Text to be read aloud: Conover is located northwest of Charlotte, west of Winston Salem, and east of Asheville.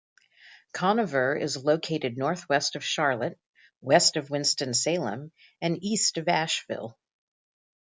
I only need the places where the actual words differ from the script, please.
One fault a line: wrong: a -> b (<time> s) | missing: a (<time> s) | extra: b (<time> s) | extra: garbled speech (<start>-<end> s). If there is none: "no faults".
no faults